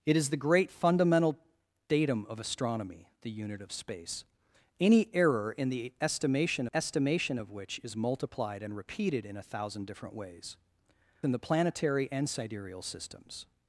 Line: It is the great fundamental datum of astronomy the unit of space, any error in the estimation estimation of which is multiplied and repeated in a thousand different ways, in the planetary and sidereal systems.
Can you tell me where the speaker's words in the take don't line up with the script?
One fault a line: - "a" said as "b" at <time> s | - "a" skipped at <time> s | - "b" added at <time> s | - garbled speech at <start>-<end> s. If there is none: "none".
none